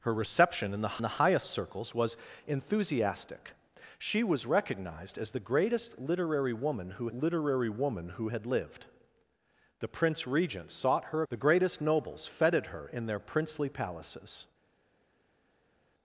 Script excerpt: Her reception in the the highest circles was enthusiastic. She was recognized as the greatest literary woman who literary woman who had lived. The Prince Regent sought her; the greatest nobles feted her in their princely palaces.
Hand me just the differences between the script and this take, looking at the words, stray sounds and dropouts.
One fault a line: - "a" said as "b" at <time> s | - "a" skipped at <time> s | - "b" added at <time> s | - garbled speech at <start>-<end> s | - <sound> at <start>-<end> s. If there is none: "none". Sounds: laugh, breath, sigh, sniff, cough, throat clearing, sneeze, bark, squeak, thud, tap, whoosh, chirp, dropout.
none